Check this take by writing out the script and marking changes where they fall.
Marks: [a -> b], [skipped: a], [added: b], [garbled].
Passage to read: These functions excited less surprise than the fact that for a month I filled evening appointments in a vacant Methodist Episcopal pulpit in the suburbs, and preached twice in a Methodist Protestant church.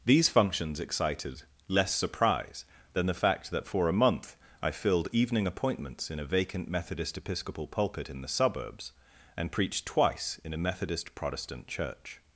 These functions excited less surprise than the fact that for a month I filled evening appointments in a vacant Methodist Episcopal pulpit in the suburbs, and preached twice in a Methodist Protestant church.